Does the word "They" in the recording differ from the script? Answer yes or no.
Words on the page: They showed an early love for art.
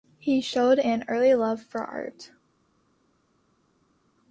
yes